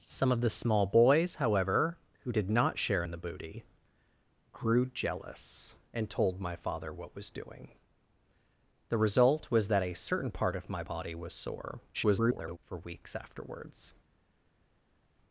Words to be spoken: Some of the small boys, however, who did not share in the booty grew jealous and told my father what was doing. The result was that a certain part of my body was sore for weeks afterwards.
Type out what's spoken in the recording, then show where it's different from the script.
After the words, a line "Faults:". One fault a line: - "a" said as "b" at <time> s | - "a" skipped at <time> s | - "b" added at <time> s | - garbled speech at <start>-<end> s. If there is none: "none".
Some of the small boys, however, who did not share in the booty grew jealous and told my father what was doing. The result was that a certain part of my body was sore [garbled] for weeks afterwards.
Faults:
- garbled speech at 11.9-12.6 s